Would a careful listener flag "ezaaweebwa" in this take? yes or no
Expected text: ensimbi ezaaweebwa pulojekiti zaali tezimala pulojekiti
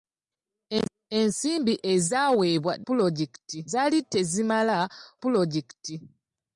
no